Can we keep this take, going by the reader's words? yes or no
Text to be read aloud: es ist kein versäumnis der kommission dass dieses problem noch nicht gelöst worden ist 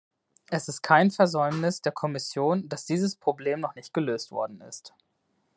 yes